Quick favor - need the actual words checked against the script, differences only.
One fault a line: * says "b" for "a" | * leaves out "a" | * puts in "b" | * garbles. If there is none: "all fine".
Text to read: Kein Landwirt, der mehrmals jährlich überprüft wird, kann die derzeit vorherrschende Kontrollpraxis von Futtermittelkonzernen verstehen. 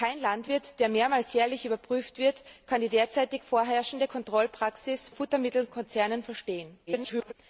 * leaves out "von"
* garbles